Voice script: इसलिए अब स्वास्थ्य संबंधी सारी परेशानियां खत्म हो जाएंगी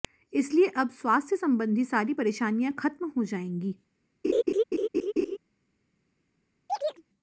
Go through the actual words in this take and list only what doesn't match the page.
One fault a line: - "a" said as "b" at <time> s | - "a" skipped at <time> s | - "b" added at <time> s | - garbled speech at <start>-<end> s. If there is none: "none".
none